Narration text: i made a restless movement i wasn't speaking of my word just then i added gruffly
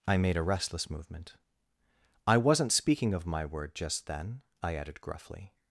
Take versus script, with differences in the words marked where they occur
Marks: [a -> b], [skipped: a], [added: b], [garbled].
i made a restless movement i wasn't speaking of my word just then i added gruffly